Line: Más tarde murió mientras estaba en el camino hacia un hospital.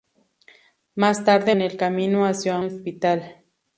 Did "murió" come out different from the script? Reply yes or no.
yes